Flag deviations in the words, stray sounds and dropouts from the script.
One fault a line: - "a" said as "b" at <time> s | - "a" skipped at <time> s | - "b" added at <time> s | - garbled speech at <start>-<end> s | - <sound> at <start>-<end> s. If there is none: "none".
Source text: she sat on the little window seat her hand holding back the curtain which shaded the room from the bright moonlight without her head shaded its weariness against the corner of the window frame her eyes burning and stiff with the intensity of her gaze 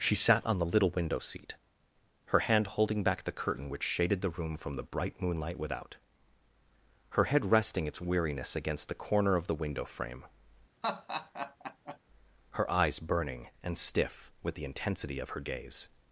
- "shaded" said as "resting" at 7.5 s
- laugh at 10.8-12.0 s